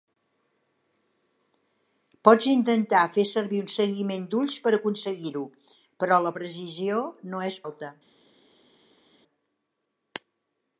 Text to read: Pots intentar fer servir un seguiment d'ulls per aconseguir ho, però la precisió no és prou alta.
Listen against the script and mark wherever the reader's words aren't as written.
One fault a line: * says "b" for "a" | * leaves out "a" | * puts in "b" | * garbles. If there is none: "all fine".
* leaves out "prou"